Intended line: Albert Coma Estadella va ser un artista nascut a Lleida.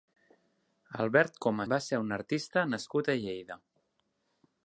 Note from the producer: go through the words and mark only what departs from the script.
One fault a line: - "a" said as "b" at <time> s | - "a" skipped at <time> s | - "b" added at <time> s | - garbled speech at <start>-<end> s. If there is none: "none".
- "Estadella" skipped at 1.7 s